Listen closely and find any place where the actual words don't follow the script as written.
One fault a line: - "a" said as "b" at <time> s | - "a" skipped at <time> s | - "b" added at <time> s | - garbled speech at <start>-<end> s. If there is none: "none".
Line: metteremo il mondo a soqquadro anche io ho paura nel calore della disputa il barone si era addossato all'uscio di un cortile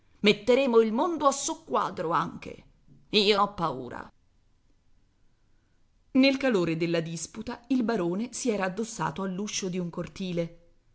none